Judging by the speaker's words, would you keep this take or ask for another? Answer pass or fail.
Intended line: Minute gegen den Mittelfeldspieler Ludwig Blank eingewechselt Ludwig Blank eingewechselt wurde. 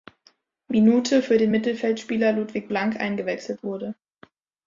fail